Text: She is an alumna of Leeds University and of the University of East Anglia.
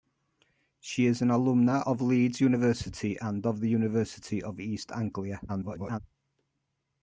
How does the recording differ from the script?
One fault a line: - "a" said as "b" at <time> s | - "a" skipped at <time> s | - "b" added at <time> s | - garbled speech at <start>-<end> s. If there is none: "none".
- garbled speech at 5.5-6.0 s